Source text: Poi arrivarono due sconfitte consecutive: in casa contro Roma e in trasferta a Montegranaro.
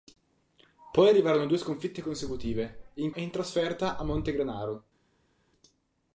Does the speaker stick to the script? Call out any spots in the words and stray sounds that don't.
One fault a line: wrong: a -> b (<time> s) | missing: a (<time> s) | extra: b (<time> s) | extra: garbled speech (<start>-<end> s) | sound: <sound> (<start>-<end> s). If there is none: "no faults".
missing: casa contro Roma (3.1 s)